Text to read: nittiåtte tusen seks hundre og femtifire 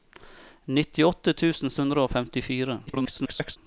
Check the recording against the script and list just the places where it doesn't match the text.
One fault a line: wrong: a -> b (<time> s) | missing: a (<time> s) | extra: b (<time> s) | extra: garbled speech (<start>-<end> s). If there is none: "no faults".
missing: seks (1.8 s)
extra: garbled speech (2.9-3.6 s)